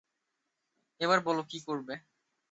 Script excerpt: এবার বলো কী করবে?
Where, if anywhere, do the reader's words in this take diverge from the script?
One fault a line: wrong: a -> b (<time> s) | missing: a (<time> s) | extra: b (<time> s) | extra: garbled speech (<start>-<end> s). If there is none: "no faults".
no faults